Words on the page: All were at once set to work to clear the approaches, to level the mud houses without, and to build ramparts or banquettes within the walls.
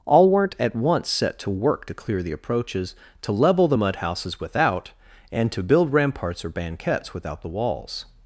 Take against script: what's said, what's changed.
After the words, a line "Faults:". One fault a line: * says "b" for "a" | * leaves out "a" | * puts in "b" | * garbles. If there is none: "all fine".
All weren't at once set to work to clear the approaches, to level the mud houses without, and to build ramparts or banquettes without the walls.
Faults:
* says "weren't" for "were"
* says "without" for "within"